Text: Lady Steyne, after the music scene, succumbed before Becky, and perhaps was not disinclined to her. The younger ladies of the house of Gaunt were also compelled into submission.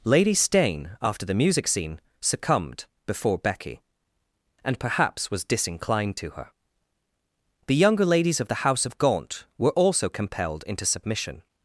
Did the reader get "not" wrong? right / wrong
wrong